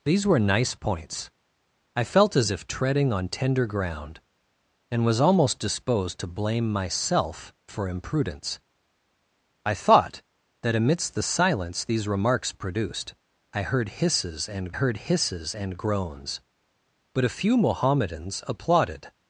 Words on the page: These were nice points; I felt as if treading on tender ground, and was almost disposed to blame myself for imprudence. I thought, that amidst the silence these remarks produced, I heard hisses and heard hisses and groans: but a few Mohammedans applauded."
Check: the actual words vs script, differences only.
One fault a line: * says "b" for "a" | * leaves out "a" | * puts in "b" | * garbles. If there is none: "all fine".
all fine